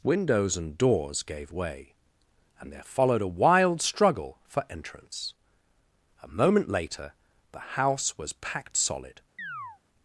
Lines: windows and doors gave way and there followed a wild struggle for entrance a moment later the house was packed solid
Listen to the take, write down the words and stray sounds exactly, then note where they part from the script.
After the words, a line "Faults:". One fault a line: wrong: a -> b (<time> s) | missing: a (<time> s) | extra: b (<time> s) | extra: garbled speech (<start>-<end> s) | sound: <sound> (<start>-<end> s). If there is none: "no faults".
windows and doors gave way and there followed a wild struggle for entrance a moment later the house was packed solid
Faults:
sound: chirp (9.4-9.8 s)